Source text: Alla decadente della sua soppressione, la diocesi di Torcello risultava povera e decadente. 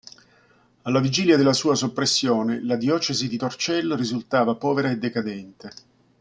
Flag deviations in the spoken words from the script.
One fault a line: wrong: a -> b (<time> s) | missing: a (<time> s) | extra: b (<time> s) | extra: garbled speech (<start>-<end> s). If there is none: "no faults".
wrong: decadente -> vigilia (1.0 s)